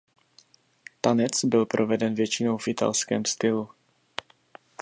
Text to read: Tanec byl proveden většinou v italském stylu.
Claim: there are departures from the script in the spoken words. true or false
false